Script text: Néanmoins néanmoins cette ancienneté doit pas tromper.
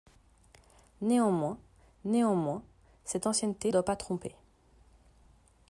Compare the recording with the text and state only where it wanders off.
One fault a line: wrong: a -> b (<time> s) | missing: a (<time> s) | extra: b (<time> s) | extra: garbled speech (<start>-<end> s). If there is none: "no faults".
no faults